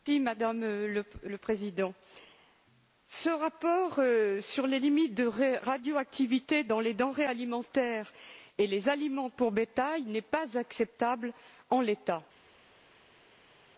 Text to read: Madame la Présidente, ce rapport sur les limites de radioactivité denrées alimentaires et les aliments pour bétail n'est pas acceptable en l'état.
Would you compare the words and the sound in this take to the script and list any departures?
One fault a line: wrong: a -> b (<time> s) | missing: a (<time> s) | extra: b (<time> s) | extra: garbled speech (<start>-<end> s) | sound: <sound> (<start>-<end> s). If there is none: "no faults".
extra: dans les (6.6 s)